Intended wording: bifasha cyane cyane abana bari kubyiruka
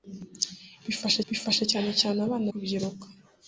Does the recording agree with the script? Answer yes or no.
no